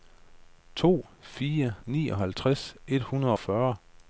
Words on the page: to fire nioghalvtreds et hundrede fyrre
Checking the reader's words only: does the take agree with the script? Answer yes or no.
yes